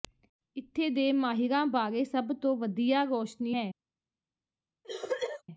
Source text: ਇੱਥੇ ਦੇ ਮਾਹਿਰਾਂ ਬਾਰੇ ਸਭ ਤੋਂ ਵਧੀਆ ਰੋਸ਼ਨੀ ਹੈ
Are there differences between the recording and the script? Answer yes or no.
no